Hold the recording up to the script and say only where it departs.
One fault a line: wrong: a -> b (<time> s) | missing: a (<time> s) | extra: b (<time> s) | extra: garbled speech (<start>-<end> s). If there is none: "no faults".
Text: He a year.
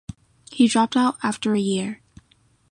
extra: dropped out after (0.7 s)